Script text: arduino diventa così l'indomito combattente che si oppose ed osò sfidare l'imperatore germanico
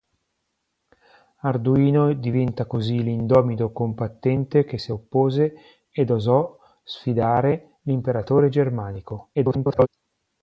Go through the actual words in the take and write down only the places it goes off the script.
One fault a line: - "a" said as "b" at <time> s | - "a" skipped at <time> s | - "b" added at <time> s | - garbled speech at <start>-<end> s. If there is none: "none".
- garbled speech at 9.3-9.9 s